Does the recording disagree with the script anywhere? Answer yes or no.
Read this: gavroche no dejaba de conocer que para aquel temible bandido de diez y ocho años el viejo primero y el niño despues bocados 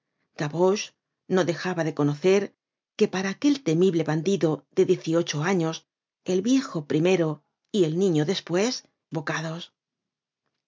no